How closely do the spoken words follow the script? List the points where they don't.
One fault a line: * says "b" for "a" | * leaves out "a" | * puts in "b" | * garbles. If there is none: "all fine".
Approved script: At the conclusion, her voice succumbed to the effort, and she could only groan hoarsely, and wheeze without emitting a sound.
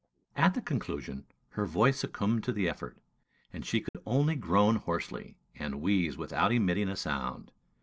all fine